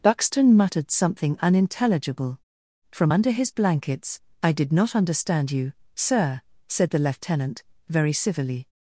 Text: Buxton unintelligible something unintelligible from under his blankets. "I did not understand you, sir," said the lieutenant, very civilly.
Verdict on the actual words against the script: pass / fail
fail